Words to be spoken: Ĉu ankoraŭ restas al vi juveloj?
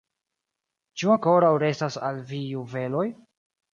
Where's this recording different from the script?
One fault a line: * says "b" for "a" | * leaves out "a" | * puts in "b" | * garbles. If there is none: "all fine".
all fine